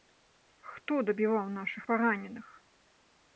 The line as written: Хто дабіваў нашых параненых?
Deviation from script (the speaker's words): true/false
false